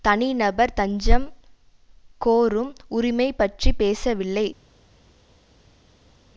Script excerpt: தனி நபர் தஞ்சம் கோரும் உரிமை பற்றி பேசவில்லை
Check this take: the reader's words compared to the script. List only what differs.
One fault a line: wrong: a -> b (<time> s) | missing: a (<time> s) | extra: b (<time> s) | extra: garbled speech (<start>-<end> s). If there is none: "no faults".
no faults